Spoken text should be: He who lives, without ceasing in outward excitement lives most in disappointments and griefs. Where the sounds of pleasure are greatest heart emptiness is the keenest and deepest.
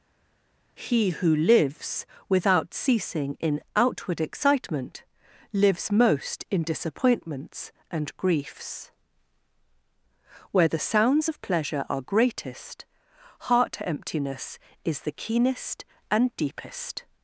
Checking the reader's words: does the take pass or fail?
pass